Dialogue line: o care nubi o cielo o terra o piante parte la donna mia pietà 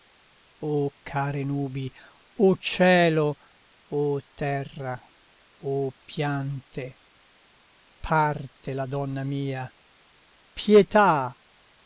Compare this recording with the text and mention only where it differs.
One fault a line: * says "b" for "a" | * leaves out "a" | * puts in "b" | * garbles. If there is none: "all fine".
all fine